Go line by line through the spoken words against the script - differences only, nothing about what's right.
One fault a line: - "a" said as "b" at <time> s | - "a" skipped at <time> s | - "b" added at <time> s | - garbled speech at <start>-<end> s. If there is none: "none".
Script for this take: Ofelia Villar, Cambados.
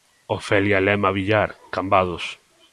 - "Lema" added at 0.8 s